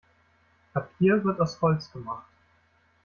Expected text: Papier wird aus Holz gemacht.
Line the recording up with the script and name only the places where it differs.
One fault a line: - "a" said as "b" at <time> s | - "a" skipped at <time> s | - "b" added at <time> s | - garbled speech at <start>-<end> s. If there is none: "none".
none